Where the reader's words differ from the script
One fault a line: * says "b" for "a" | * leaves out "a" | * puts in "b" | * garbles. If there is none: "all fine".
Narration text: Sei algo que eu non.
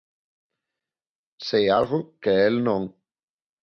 * says "el" for "eu"